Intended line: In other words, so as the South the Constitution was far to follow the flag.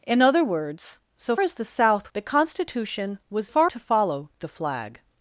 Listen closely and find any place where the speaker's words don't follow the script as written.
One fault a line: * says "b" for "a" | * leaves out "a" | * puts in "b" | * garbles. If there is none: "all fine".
all fine